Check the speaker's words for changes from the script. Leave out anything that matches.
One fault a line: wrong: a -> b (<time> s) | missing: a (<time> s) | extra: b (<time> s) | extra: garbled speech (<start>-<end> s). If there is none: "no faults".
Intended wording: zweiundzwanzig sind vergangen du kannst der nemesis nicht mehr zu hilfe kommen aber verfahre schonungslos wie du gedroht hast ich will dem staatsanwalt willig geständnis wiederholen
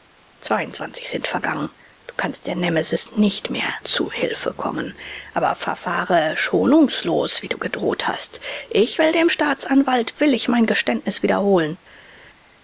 extra: mein (10.5 s)